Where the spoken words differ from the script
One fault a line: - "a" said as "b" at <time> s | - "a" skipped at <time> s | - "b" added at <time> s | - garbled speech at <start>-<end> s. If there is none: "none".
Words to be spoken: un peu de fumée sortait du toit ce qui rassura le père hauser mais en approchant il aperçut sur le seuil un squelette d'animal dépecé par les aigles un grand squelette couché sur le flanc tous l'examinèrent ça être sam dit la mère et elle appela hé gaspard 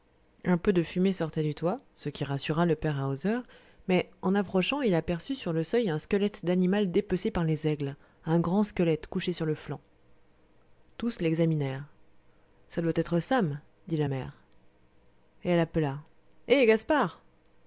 - "doit" added at 12.8 s